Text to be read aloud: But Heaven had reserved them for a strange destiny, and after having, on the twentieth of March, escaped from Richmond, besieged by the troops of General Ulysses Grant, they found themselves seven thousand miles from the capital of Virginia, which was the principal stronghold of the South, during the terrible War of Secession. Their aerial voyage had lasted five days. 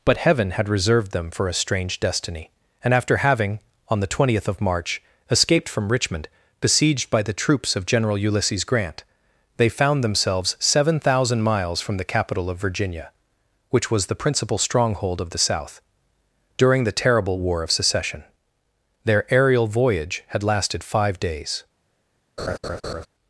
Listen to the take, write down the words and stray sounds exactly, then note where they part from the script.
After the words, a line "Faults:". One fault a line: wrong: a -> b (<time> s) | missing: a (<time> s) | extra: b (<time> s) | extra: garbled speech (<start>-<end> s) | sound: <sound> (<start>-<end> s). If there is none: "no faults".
But Heaven had reserved them for a strange destiny, and after having, on the twentieth of March, escaped from Richmond, besieged by the troops of General Ulysses Grant, they found themselves seven thousand miles from the capital of Virginia, which was the principal stronghold of the South, during the terrible War of Secession. Their aerial voyage had lasted five days.
Faults:
sound: laugh (22.4-23.1 s)